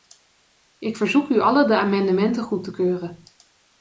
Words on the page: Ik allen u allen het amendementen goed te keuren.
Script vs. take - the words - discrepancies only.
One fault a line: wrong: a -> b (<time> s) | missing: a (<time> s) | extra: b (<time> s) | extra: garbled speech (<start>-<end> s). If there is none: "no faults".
wrong: allen -> verzoek (0.9 s)
wrong: het -> de (1.7 s)